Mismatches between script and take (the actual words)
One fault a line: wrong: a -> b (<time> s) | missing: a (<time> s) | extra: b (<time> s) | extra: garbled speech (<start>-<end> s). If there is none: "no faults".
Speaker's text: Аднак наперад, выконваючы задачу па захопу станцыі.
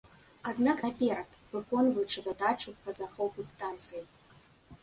no faults